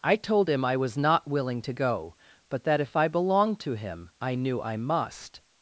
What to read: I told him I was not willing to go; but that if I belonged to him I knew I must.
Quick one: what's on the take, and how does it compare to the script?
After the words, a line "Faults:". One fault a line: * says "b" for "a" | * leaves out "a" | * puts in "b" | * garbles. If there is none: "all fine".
I told him I was not willing to go; but that if I belonged to him I knew I must.
Faults:
all fine